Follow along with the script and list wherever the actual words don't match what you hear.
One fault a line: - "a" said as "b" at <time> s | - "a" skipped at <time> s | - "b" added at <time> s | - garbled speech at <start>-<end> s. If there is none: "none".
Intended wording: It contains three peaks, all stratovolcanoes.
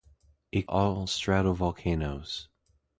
- "contains three peaks" skipped at 0.7 s